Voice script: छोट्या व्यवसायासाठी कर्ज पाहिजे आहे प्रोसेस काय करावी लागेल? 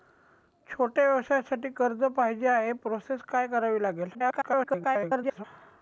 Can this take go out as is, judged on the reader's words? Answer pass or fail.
fail